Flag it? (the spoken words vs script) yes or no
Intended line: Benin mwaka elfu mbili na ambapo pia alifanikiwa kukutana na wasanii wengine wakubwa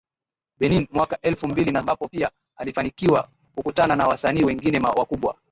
no